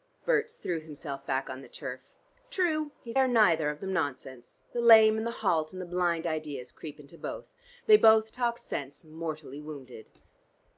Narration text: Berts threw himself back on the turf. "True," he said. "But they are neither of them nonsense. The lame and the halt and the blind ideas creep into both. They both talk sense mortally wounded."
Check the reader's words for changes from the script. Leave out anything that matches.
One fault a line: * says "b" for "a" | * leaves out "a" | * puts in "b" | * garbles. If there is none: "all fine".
* leaves out "said But they"